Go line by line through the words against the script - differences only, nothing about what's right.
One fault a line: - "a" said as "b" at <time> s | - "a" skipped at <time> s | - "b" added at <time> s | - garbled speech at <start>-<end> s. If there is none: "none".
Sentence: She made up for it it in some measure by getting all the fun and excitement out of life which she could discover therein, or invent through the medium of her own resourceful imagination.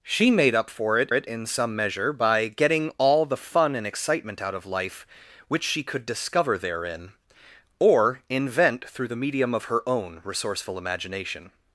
none